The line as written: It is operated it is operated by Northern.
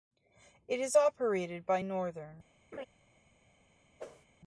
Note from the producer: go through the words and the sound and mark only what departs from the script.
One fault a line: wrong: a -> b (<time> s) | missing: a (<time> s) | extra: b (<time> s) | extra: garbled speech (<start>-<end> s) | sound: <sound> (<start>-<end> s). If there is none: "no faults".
missing: it is operated (1.7 s)
sound: laugh (2.7-2.9 s)
sound: whoosh (4.0-4.3 s)